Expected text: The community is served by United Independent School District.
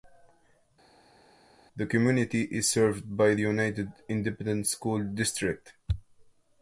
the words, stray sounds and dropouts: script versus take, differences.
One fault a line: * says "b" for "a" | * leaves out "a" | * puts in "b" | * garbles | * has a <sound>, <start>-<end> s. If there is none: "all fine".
all fine